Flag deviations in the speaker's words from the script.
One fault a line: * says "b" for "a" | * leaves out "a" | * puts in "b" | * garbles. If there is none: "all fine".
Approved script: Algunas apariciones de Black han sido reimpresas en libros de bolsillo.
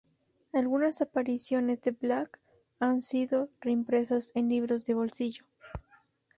all fine